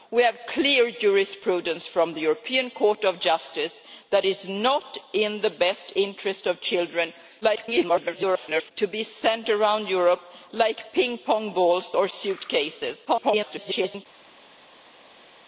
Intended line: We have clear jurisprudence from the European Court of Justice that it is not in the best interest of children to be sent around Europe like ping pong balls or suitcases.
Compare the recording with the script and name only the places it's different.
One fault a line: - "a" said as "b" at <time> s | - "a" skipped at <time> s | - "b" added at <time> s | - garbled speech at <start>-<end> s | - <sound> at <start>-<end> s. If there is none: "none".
- garbled speech at 7.4-8.7 s
- garbled speech at 13.0-14.1 s